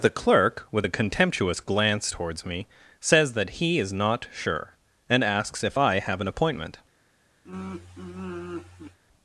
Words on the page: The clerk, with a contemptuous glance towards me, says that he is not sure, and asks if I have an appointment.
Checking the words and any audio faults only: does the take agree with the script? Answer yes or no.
no